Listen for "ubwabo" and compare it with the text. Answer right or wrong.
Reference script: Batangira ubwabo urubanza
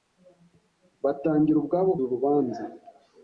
right